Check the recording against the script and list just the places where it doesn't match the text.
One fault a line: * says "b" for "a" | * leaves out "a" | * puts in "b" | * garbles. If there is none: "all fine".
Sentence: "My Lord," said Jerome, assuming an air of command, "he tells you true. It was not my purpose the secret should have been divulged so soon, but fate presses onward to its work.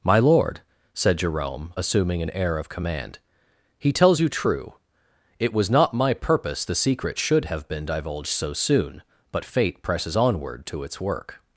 all fine